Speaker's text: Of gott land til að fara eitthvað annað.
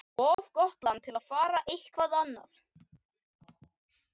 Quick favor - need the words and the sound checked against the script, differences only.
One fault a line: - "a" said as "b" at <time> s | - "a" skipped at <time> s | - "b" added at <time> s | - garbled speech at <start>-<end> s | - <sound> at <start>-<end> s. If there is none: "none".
- dropout at 0.3-0.4 s